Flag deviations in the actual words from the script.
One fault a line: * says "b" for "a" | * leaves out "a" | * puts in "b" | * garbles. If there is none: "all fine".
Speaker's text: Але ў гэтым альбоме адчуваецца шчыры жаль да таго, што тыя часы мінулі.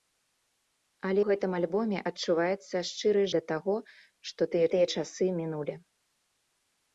* leaves out "ў"
* leaves out "жаль"
* puts in "тыя"